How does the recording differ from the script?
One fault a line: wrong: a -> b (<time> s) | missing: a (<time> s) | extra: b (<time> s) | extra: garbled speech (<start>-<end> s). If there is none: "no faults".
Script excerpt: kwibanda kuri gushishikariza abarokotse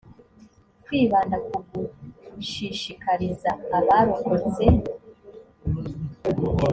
wrong: kuri -> ku (1.5 s)